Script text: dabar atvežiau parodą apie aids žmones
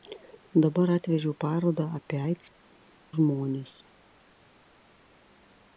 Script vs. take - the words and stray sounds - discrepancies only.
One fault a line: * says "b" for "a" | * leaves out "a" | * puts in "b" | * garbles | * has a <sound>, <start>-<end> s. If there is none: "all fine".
all fine